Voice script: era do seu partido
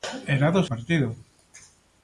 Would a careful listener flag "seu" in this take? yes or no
yes